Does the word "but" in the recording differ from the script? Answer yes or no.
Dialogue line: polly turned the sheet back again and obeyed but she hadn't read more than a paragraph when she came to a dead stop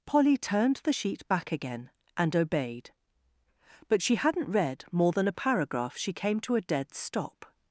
no